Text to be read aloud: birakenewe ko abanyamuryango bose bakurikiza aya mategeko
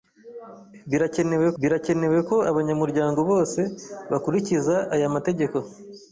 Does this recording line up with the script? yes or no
no